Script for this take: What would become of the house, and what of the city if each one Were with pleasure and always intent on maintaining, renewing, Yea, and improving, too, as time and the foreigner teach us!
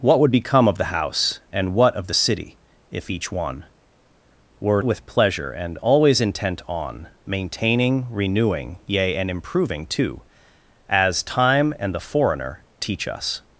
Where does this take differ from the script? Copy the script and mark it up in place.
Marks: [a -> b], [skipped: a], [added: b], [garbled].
What would become of the house, and what of the city if each one Were with pleasure and always intent on maintaining, renewing, Yea, and improving, too, as time and the foreigner teach us!